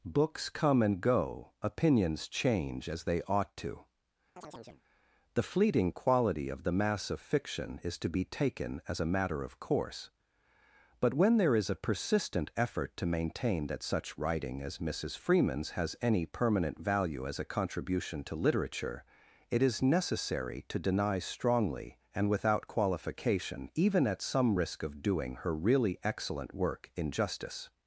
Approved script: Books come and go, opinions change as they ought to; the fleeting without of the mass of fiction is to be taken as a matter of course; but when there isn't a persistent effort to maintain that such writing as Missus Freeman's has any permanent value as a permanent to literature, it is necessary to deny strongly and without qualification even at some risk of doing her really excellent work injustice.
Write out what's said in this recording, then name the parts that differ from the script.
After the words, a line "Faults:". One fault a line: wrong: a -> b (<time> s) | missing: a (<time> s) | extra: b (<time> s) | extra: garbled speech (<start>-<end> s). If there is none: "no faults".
Books come and go, opinions change as they ought to; the fleeting quality of the mass of fiction is to be taken as a matter of course; but when there is a persistent effort to maintain that such writing as Missus Freeman's has any permanent value as a contribution to literature, it is necessary to deny strongly and without qualification even at some risk of doing her really excellent work injustice.
Faults:
wrong: without -> quality (5.9 s)
wrong: isn't -> is (11.6 s)
wrong: permanent -> contribution (17.5 s)